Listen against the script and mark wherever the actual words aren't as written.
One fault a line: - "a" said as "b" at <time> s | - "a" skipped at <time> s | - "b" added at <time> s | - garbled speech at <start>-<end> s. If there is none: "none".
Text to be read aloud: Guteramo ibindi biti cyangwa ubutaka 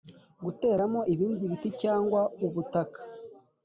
none